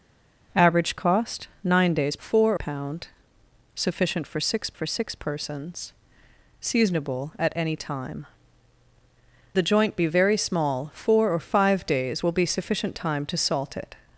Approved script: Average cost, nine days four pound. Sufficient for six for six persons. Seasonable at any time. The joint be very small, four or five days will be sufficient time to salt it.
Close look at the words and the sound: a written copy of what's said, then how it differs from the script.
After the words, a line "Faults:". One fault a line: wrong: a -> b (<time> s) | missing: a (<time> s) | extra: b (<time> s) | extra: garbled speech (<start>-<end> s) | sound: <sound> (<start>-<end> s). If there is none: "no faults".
Average cost, nine days four pound. Sufficient for six for six persons. Seasonable at any time. The joint be very small, four or five days will be sufficient time to salt it.
Faults:
no faults